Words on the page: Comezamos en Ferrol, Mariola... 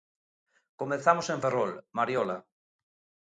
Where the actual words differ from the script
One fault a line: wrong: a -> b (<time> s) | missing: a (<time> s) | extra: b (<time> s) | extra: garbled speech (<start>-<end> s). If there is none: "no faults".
no faults